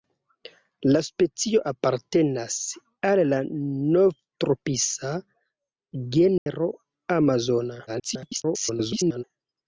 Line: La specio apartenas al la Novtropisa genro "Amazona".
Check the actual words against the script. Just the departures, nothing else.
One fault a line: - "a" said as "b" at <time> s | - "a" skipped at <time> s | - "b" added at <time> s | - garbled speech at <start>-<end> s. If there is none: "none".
- garbled speech at 7.9-9.2 s